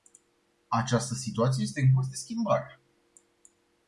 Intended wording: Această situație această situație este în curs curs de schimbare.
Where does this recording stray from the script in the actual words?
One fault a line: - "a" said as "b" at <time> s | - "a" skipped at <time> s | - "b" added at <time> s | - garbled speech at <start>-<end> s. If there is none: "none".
- "această situație" skipped at 1.6 s
- "curs" skipped at 2.1 s